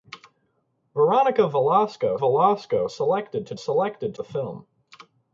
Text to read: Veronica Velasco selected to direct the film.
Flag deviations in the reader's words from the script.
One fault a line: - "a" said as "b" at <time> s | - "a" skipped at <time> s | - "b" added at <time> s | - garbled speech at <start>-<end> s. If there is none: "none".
- "Velasco" added at 2.1 s
- "direct" said as "selected" at 3.5 s